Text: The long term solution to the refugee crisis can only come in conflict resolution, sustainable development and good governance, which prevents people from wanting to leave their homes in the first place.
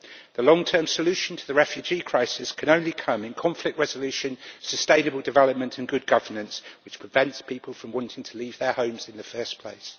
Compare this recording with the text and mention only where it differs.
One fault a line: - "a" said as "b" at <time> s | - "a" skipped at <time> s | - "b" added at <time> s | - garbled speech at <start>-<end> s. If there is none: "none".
none